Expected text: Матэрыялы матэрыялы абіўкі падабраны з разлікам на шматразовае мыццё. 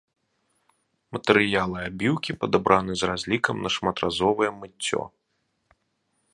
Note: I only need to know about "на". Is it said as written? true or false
true